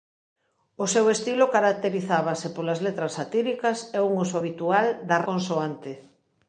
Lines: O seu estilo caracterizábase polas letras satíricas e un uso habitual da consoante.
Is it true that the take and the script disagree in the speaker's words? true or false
false